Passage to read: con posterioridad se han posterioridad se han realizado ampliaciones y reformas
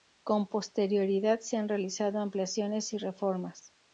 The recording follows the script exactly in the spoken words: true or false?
false